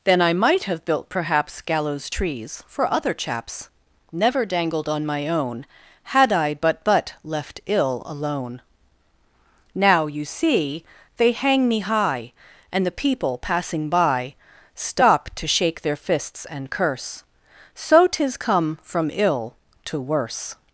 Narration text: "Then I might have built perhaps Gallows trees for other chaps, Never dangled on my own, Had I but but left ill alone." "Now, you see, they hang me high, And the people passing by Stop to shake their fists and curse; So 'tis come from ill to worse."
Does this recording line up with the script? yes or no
yes